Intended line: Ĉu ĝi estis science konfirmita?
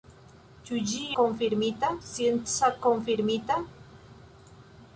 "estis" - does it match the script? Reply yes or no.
no